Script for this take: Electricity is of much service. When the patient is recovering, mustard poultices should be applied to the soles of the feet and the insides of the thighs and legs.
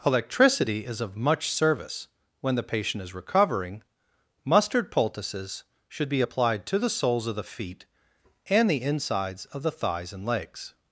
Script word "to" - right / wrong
right